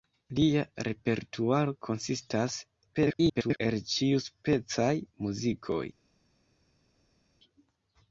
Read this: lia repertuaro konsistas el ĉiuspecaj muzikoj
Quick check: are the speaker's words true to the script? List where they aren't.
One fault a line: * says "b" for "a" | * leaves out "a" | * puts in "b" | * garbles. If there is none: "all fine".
* garbles